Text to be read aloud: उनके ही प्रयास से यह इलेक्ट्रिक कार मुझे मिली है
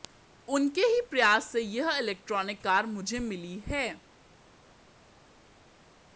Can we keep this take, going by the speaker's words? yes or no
yes